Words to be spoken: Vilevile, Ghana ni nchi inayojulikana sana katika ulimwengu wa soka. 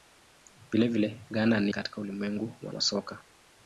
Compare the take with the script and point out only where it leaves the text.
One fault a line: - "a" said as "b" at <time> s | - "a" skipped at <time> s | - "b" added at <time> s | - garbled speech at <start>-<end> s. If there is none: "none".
- "nchi inayojulikana sana" skipped at 1.7 s
- "wa" added at 2.7 s